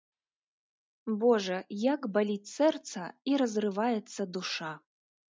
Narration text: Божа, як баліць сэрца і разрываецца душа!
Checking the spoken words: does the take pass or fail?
pass